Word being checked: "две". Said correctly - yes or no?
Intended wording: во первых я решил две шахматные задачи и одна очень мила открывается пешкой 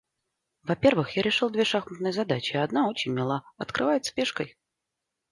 yes